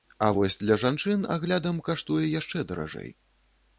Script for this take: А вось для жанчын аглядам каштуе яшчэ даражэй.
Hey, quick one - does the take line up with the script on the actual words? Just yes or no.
yes